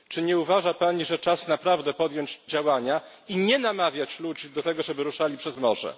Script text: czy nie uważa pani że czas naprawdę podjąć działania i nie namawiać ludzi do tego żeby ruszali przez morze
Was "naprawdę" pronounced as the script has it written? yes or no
yes